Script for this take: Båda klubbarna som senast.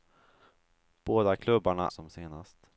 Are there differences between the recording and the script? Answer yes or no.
no